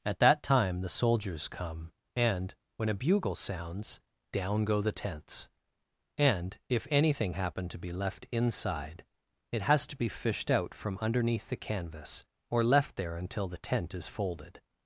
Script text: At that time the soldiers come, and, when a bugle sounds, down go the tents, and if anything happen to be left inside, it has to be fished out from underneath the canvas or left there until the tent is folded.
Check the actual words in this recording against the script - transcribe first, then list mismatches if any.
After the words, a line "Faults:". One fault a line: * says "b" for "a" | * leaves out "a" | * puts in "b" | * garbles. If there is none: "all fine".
At that time the soldiers come, and, when a bugle sounds, down go the tents, and if anything happen to be left inside, it has to be fished out from underneath the canvas or left there until the tent is folded.
Faults:
all fine